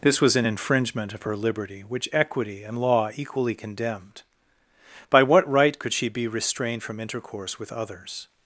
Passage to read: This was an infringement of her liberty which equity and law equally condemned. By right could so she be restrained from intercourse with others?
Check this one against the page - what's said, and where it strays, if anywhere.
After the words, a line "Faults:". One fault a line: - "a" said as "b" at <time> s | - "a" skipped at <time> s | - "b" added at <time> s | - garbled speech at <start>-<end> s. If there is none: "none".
This was an infringement of her liberty which equity and law equally condemned. By what right could she be restrained from intercourse with others?
Faults:
- "what" added at 5.2 s
- "so" skipped at 5.9 s